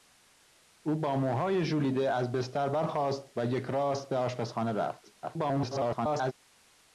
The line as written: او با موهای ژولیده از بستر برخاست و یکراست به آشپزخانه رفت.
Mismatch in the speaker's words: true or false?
true